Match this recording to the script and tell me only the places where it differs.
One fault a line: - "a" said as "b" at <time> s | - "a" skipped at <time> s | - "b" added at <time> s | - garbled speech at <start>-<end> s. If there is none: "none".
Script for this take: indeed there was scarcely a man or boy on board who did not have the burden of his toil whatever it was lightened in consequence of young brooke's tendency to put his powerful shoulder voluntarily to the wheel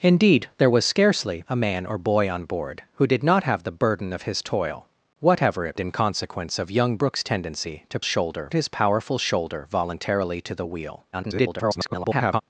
- "was lightened" skipped at 5.8 s
- "put" said as "shoulder" at 8.0 s
- garbled speech at 11.1-12.4 s